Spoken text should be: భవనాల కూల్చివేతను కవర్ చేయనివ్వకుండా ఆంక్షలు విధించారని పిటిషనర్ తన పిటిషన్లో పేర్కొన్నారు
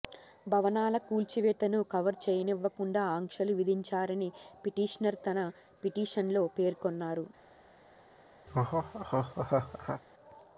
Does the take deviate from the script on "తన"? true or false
false